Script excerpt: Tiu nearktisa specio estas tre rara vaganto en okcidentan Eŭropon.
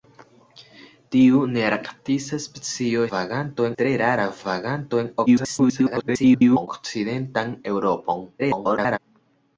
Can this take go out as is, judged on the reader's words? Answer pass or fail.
fail